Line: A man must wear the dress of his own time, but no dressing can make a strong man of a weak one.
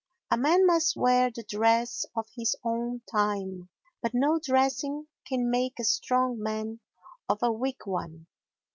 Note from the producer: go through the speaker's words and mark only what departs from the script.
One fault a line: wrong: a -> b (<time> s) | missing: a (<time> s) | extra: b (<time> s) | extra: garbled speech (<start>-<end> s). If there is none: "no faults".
no faults